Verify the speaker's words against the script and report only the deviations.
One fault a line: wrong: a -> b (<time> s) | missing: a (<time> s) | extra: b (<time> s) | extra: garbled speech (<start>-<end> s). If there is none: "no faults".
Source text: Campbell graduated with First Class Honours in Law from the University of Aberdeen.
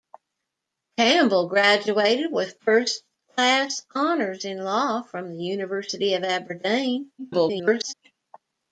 extra: garbled speech (7.2-7.9 s)